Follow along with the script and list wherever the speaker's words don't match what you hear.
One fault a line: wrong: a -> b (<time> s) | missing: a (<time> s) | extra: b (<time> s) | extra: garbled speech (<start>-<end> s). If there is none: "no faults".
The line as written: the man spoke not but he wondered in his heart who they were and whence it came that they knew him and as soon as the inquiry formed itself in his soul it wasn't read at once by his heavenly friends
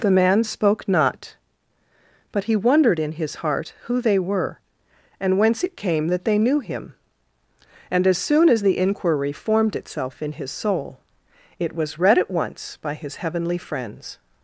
wrong: wasn't -> was (11.7 s)